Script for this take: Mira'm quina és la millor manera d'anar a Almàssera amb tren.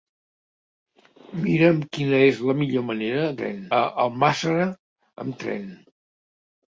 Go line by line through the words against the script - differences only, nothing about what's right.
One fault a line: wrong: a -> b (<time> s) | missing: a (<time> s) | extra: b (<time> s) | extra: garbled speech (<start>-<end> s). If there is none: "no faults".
wrong: d'anar -> tren (3.4 s)